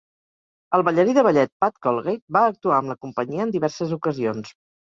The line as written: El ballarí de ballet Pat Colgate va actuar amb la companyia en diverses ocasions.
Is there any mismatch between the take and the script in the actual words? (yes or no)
no